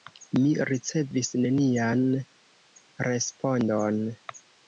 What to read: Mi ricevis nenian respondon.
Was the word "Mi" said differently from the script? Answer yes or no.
no